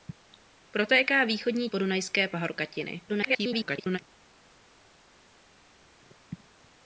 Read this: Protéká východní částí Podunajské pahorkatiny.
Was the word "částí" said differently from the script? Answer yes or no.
yes